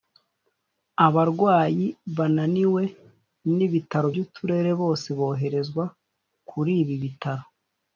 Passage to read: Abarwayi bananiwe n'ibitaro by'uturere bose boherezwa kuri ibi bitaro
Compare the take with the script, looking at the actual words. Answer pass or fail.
pass